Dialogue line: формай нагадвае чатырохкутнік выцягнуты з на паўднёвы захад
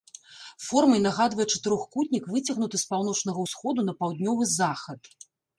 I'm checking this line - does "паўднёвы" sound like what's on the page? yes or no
yes